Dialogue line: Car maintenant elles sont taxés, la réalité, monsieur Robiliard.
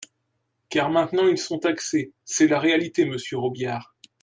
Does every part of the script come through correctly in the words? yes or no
no